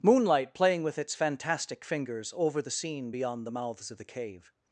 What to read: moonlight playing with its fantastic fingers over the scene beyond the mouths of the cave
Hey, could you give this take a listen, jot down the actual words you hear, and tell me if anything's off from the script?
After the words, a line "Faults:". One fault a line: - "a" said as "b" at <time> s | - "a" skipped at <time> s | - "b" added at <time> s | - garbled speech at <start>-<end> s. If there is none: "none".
moonlight playing with its fantastic fingers over the scene beyond the mouths of the cave
Faults:
none